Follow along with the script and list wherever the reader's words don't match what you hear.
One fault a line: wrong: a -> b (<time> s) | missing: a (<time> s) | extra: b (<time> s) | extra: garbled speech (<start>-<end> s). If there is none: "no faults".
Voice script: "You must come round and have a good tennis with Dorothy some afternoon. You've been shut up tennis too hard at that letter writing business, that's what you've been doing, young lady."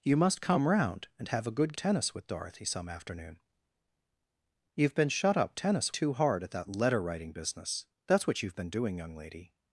no faults